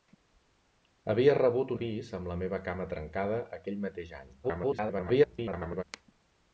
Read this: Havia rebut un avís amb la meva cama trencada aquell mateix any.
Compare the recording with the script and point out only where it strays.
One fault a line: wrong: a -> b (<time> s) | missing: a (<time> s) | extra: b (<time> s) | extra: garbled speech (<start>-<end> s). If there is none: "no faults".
missing: un (1.7 s)
extra: garbled speech (4.4-5.8 s)